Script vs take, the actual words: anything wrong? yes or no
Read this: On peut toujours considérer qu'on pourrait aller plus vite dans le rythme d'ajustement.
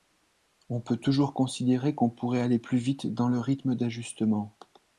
no